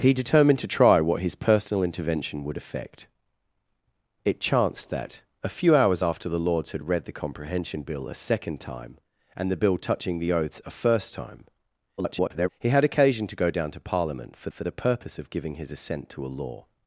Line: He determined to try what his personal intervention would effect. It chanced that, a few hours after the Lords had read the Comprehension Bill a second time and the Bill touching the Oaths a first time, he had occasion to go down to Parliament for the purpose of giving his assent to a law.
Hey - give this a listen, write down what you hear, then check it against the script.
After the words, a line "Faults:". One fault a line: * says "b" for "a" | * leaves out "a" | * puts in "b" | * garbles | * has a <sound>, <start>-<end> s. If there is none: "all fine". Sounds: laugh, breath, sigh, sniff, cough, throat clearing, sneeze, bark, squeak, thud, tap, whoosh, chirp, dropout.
He determined to try what his personal intervention would effect. It chanced that, a few hours after the Lords had read the Comprehension Bill a second time and the Bill touching the Oaths a first time, [garbled] he had occasion to go down to Parliament for for the purpose of giving his assent to a law.
Faults:
* garbles
* puts in "for"